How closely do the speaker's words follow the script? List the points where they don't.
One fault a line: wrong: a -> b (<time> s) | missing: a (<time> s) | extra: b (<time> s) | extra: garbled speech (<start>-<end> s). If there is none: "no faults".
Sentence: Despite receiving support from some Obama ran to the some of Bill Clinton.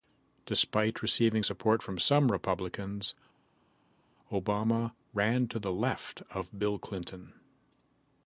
extra: Republicans (2.3 s)
wrong: some -> left (5.7 s)